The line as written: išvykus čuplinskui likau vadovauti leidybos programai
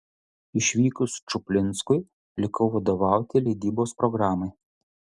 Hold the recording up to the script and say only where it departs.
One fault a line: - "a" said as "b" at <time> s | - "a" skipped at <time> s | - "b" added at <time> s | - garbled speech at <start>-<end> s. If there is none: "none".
none